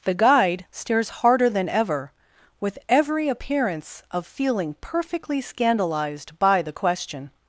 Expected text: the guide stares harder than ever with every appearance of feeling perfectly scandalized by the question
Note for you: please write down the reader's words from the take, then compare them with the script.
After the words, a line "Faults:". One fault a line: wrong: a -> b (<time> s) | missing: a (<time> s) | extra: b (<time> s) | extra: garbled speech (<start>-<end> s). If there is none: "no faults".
the guide stares harder than ever with every appearance of feeling perfectly scandalized by the question
Faults:
no faults